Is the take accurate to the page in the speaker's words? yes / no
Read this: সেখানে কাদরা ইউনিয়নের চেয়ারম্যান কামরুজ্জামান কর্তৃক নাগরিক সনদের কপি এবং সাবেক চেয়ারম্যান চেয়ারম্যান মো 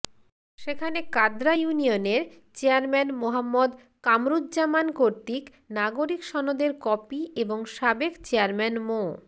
no